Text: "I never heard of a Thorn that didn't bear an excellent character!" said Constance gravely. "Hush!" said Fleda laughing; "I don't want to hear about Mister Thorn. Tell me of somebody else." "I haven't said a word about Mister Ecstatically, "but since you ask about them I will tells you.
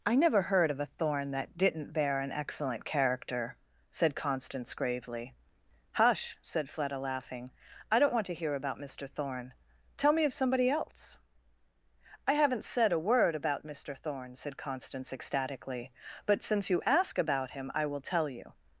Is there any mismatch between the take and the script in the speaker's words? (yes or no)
yes